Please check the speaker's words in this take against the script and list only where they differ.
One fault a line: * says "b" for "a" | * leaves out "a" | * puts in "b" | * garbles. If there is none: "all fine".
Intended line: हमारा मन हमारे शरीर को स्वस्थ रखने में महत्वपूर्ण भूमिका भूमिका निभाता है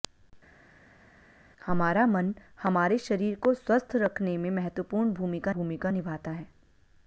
all fine